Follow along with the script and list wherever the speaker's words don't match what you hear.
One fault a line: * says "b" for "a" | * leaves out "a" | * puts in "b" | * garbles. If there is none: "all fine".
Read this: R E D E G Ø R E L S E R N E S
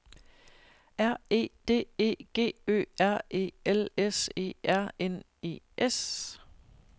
all fine